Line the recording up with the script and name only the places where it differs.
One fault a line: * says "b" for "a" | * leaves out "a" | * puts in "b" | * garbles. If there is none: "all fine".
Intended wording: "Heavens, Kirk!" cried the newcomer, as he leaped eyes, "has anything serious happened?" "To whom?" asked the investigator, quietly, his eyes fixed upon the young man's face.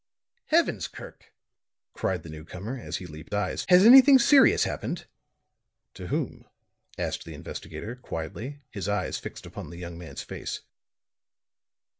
all fine